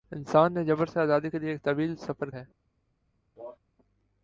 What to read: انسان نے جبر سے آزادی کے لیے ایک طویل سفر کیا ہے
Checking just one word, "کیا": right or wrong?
wrong